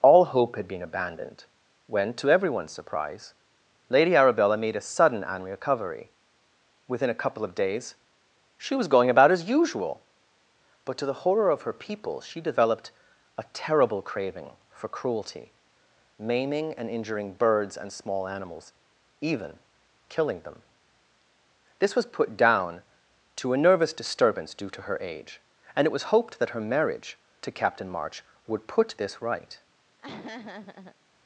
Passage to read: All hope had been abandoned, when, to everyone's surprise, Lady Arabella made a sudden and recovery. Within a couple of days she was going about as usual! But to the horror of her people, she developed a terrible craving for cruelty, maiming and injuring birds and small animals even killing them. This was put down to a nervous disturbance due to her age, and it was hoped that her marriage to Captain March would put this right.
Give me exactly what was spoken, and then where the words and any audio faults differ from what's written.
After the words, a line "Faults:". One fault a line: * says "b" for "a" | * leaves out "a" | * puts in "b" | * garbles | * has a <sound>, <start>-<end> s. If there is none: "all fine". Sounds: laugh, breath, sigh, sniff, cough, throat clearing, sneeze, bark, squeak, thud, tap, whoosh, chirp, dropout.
All hope had been abandoned, when, to everyone's surprise, Lady Arabella made a sudden and recovery. Within a couple of days she was going about as usual! But to the horror of her people, she developed a terrible craving for cruelty, maiming and injuring birds and small animals even killing them. This was put down to a nervous disturbance due to her age, and it was hoped that her marriage to Captain March would put this right.
Faults:
* has a laugh, 30.0-31.0 s